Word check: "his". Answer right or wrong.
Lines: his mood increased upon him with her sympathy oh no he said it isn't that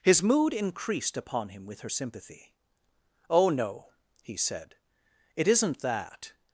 right